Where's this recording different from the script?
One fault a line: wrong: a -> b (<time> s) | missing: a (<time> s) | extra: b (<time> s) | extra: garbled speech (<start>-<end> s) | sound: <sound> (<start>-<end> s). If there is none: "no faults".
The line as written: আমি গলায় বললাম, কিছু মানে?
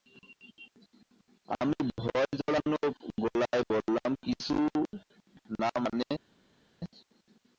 extra: ভয় জড়ানো (2.0 s)
extra: না (5.6 s)